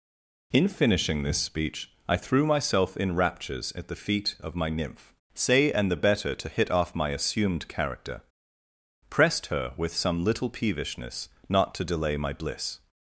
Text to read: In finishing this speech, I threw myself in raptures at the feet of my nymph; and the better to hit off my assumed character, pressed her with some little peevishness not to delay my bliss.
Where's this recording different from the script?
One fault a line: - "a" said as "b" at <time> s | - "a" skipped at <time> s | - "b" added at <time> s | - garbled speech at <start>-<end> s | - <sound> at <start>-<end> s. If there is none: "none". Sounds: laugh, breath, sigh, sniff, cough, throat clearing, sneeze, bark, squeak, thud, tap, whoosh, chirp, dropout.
- "say" added at 5.3 s